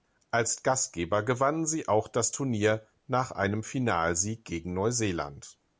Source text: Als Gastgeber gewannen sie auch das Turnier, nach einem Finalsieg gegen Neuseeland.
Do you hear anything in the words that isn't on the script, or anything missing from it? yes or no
no